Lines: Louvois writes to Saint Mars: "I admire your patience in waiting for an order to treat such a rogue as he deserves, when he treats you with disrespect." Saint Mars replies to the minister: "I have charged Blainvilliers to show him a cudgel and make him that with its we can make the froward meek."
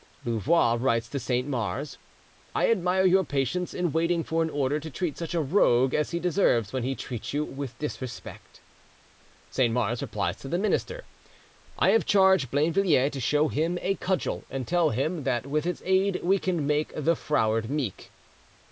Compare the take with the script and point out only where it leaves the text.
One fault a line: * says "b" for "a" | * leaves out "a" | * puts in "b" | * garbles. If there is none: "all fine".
* says "tell" for "make"
* puts in "aid"